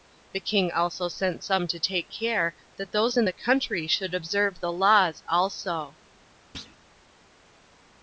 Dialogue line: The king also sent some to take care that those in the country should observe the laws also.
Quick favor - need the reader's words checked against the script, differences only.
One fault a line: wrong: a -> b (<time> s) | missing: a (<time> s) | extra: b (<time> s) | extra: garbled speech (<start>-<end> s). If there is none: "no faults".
no faults